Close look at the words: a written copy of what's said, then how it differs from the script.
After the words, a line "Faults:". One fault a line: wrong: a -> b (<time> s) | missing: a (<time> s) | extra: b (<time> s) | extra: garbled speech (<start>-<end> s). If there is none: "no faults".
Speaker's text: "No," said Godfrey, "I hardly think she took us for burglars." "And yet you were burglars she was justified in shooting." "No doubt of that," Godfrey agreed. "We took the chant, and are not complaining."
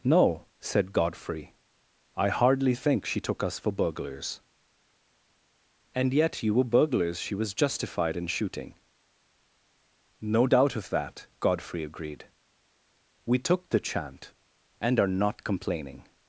"No," said Godfrey, "I hardly think she took us for burglars." "And yet you were burglars she was justified in shooting." "No doubt of that," Godfrey agreed. "We took the chant, and are not complaining."
Faults:
no faults